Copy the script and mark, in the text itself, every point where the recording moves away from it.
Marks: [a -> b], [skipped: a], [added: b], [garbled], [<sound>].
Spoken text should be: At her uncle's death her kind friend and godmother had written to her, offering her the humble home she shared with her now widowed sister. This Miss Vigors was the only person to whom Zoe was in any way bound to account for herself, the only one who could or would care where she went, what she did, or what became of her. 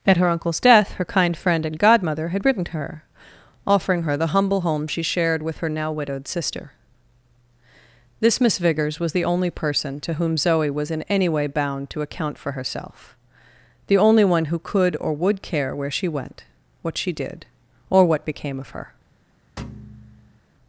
At her uncle's death her kind friend and godmother had written to her, offering her the humble home she shared with her now widowed sister. This Miss Vigors was the only person to whom Zoe was in any way bound to account for herself, the only one who could or would care where she went, what she did, or what became of her. [thud]